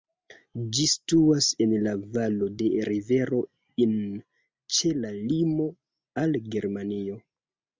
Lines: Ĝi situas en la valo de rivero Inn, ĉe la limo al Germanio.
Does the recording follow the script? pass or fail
pass